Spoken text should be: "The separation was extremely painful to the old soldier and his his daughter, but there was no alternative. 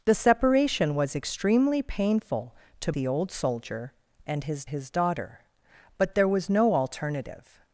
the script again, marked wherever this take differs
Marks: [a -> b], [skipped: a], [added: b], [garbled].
"The separation was extremely painful to the old soldier and his his daughter, but there was no alternative.